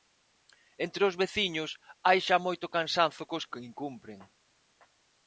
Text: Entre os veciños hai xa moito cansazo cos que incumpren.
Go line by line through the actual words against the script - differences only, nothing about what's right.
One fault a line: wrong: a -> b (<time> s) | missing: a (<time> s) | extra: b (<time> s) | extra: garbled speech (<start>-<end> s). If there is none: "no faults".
no faults